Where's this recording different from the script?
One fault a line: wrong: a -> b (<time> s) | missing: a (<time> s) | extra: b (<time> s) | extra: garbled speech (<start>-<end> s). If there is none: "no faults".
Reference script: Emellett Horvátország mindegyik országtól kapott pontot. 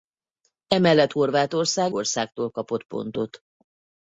missing: mindegyik (1.9 s)